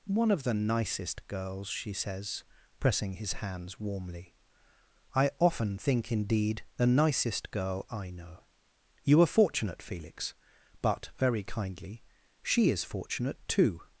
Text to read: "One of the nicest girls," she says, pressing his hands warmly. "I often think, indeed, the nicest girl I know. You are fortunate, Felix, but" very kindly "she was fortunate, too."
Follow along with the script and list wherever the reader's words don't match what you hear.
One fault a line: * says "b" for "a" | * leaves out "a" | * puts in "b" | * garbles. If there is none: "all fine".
* says "is" for "was"